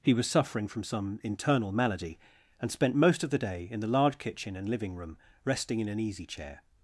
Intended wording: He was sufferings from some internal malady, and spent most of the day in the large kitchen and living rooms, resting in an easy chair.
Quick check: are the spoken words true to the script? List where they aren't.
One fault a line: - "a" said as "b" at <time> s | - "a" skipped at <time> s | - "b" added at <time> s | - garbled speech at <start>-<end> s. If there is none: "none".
- "sufferings" said as "suffering" at 0.3 s
- "rooms" said as "room" at 5.0 s